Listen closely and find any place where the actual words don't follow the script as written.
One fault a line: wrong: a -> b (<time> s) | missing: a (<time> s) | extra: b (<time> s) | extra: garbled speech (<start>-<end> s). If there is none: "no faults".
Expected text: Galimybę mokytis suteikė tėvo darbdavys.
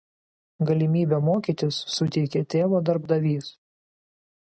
no faults